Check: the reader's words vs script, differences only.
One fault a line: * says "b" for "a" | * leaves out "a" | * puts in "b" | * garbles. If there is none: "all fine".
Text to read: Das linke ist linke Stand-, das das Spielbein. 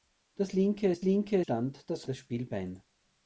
all fine